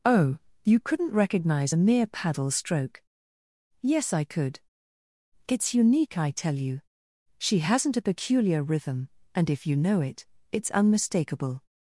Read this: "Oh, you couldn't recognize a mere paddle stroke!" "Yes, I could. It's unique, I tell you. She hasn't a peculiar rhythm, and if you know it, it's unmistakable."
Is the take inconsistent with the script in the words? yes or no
no